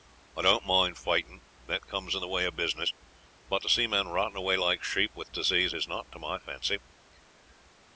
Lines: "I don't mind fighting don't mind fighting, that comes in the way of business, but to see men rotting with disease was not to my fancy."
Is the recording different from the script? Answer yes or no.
yes